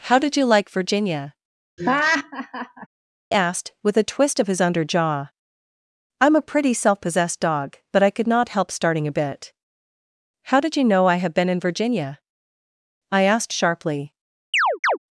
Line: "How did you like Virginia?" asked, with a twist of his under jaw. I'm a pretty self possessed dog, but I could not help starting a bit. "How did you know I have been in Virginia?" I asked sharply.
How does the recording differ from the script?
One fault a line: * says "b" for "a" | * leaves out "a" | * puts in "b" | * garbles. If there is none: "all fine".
all fine